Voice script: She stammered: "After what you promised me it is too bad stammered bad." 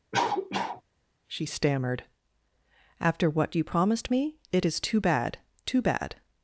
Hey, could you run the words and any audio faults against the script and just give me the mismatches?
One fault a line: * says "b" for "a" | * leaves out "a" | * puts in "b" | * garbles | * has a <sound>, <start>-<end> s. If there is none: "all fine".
* has a cough, 0.1-0.8 s
* says "too" for "stammered"